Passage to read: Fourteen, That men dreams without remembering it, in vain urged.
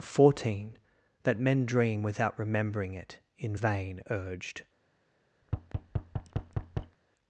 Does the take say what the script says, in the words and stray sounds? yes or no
no